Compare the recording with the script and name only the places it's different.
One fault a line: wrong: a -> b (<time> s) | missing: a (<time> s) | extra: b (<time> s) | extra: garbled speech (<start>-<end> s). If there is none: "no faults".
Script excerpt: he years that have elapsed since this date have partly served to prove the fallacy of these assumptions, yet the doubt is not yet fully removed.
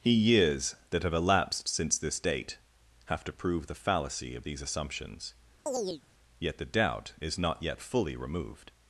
missing: partly served (3.2 s)